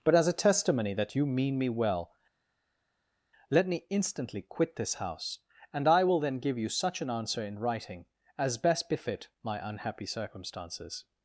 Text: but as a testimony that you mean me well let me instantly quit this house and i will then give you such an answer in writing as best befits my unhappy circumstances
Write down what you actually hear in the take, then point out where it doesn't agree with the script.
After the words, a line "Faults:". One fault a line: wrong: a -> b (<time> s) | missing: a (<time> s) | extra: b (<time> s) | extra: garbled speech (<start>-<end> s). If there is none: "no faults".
but as a testimony that you mean me well let me instantly quit this house and i will then give you such an answer in writing as best befit my unhappy circumstances
Faults:
wrong: befits -> befit (8.9 s)